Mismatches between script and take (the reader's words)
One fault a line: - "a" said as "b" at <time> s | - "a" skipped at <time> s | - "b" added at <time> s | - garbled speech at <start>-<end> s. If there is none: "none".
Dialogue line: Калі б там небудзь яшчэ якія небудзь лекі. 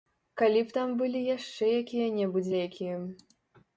- "небудзь" said as "былі" at 1.0 s